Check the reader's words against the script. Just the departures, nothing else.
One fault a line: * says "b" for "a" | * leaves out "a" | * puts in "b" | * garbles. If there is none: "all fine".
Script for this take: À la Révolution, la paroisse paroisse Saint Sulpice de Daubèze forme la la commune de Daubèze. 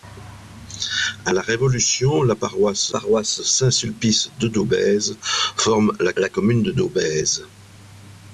all fine